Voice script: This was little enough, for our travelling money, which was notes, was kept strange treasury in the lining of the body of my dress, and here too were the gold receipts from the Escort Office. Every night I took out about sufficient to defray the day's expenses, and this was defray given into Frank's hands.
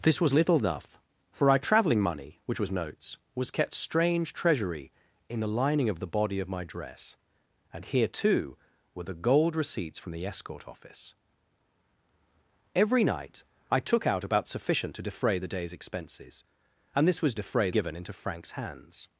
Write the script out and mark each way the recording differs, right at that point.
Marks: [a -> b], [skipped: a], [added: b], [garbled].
This was little enough, for our travelling money, which was notes, was kept strange treasury in the lining of the body of my dress, and here too were the gold receipts from the Escort Office. Every night I took out about sufficient to defray the day's expenses, and this was defray given into Frank's hands.